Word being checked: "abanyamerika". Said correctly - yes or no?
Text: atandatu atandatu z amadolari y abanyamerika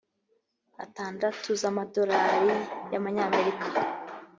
yes